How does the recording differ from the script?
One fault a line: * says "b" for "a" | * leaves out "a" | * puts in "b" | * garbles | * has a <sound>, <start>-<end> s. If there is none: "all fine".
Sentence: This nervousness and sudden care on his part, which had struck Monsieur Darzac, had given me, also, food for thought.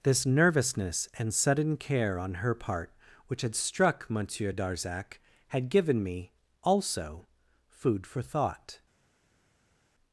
* says "her" for "his"